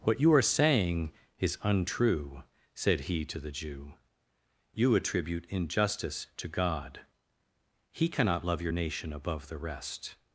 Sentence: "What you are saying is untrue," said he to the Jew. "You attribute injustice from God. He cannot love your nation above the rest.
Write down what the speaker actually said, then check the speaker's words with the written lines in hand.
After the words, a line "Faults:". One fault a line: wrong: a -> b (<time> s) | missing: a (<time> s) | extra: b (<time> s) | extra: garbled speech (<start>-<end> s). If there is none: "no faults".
"What you are saying is untrue," said he to the Jew. "You attribute injustice to God. He cannot love your nation above the rest.
Faults:
wrong: from -> to (6.4 s)